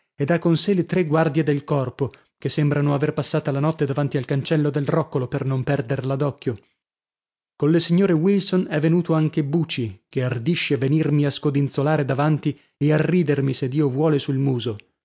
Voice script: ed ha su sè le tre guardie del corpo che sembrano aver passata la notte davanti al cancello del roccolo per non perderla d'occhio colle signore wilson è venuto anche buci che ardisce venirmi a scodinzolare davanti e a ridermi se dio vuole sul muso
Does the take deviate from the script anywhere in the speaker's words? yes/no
yes